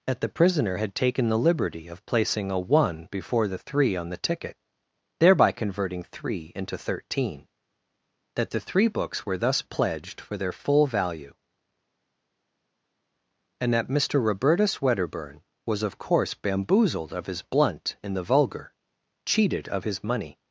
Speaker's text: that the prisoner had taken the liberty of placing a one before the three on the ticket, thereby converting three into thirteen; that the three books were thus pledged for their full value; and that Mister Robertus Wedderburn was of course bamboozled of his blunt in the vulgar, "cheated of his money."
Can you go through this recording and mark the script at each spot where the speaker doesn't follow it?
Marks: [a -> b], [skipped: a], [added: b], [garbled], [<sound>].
that the prisoner had taken the liberty of placing a one before the three on the ticket, thereby converting three into thirteen; that the three books were thus pledged for their full value; and that Mister Robertus Wedderburn was of course bamboozled of his blunt in the vulgar, "cheated of his money."